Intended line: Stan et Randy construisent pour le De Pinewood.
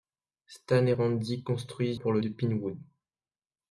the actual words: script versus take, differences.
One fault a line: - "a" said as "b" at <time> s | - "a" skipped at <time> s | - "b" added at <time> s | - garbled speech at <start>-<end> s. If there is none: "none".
none